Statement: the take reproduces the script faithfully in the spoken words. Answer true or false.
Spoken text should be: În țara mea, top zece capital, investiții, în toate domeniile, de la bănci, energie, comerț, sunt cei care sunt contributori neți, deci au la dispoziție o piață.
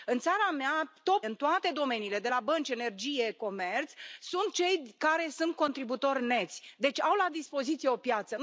false